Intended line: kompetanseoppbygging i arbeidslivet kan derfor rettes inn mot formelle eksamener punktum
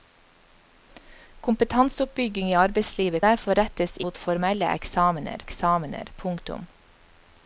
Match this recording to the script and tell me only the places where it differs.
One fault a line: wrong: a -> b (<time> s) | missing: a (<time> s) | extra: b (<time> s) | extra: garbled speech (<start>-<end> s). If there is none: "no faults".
missing: kan (3.2 s)
missing: inn (4.0 s)
extra: eksamener (5.5 s)